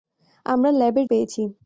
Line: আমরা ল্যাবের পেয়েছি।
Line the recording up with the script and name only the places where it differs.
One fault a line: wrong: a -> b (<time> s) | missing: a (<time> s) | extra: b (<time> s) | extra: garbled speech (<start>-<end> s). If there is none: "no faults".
no faults